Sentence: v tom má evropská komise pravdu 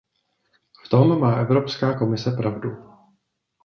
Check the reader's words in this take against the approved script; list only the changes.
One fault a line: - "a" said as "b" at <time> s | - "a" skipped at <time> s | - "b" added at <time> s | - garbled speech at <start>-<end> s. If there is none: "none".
none